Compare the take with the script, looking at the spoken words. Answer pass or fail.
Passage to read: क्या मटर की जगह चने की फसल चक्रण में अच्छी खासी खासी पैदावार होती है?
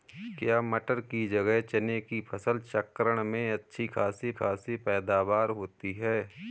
pass